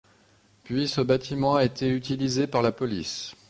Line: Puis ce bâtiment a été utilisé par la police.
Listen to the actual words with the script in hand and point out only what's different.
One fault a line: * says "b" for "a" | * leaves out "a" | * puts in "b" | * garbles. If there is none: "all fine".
all fine